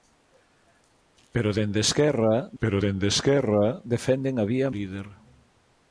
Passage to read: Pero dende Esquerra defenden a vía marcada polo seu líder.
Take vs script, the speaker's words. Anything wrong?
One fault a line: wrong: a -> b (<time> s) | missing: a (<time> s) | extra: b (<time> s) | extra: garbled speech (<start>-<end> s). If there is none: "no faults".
extra: pero dende Esquerra (2.6 s)
missing: marcada polo seu (4.7 s)